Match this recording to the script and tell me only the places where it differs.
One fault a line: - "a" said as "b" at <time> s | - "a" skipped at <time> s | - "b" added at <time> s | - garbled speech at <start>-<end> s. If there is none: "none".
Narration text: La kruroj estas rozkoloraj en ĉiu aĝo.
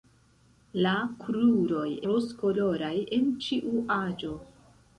- "estas" skipped at 1.9 s